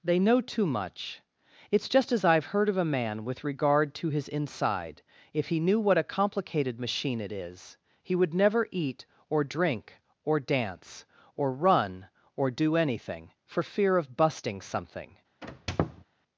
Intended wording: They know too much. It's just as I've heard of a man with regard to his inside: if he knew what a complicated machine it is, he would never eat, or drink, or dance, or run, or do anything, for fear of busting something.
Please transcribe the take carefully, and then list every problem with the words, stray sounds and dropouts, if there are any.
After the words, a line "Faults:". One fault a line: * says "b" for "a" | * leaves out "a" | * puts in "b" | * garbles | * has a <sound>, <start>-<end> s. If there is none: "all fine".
They know too much. It's just as I've heard of a man with regard to his inside: if he knew what a complicated machine it is, he would never eat, or drink, or dance, or run, or do anything, for fear of busting something.
Faults:
* has a squeak, 15.4-16.0 s